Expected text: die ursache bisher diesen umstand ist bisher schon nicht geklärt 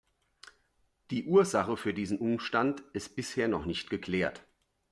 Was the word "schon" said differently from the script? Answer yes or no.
yes